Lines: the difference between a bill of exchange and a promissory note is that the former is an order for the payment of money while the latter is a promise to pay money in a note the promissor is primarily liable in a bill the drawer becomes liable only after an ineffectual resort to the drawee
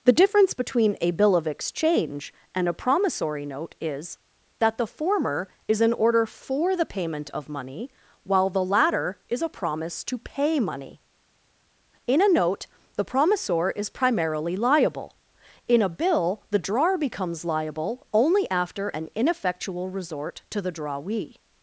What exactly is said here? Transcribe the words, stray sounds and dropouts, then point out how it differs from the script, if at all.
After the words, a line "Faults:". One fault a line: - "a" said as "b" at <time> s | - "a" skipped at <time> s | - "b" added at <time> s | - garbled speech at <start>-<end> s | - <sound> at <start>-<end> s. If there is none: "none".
the difference between a bill of exchange and a promissory note is that the former is an order for the payment of money while the latter is a promise to pay money in a note the promissor is primarily liable in a bill the drawer becomes liable only after an ineffectual resort to the drawee
Faults:
none